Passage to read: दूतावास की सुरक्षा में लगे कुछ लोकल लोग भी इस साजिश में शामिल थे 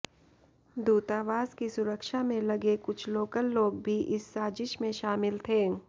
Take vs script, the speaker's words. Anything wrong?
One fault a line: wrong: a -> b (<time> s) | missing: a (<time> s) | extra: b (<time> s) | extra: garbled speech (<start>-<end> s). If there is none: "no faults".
no faults